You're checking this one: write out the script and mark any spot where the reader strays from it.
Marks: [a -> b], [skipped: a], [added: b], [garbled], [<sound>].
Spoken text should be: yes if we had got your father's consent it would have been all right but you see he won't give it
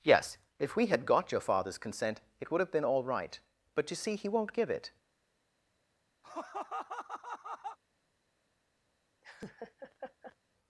yes if we had got your father's consent it would have been all right but you see he won't give it [laugh] [laugh]